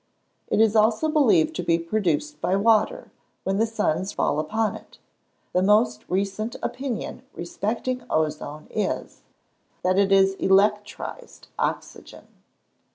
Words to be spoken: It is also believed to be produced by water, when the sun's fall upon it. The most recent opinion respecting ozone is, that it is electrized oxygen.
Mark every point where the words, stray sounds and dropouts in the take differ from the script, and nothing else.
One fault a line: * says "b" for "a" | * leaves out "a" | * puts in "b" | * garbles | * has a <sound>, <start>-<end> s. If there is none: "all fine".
all fine